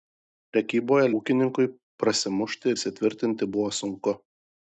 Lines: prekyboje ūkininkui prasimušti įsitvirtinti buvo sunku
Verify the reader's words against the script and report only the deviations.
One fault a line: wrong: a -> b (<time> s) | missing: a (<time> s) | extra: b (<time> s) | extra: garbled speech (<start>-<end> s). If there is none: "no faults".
no faults